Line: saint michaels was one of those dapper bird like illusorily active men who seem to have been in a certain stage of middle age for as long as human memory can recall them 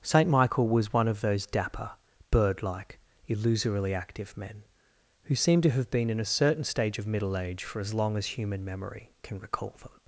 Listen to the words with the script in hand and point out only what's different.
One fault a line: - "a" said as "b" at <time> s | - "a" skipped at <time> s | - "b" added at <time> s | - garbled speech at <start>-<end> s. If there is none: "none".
- "michaels" said as "michael" at 0.3 s